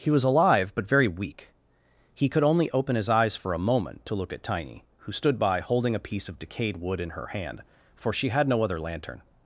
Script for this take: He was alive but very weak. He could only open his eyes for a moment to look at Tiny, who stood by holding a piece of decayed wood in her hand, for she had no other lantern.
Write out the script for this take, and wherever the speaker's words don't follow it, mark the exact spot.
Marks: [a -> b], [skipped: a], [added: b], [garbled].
He was alive but very weak. He could only open his eyes for a moment to look at Tiny, who stood by holding a piece of decayed wood in her hand, for she had no other lantern.